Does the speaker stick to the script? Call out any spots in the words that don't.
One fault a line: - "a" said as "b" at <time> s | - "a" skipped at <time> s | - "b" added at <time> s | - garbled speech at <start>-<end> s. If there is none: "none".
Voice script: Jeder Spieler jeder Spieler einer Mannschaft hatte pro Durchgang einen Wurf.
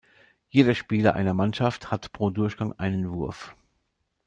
- "jeder Spieler" skipped at 1.1 s
- "hatte" said as "hat" at 1.9 s